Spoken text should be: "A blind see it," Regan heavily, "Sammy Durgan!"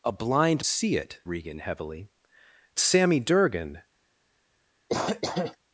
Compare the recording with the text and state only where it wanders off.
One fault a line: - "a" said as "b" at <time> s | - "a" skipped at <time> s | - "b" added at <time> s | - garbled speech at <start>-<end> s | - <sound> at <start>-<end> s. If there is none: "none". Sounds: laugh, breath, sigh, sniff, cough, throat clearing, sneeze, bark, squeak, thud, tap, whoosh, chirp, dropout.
- cough at 4.9-5.6 s